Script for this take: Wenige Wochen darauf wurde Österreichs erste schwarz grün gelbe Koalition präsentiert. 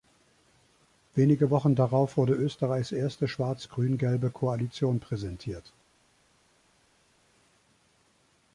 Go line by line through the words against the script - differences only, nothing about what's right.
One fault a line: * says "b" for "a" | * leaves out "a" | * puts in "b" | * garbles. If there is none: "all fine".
all fine